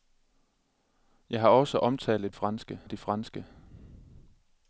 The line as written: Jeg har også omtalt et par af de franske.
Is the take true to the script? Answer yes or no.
no